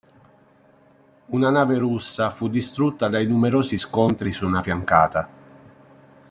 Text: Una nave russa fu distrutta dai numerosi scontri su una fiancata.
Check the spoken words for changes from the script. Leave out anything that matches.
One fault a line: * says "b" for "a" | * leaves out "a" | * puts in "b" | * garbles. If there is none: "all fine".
all fine